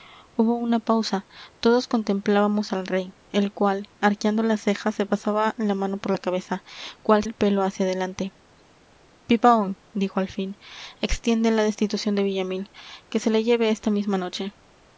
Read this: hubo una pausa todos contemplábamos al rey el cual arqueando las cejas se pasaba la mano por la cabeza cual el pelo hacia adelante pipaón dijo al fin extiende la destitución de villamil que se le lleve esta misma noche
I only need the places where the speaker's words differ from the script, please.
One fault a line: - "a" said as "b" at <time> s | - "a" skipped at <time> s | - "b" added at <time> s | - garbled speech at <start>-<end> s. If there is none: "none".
none